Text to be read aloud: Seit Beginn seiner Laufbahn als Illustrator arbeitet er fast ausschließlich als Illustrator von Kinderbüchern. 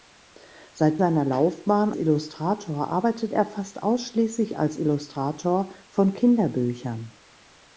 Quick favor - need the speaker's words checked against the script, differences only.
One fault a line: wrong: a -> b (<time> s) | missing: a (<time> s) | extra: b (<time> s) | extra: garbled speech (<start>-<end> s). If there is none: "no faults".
missing: Beginn (1.0 s)
missing: als (1.9 s)